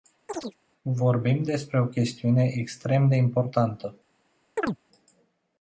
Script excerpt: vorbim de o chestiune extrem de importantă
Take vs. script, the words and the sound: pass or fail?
fail